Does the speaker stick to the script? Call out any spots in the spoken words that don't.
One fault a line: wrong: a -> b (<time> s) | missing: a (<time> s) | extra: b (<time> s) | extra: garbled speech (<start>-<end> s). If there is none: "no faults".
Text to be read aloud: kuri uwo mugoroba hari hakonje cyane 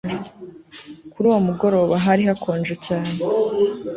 no faults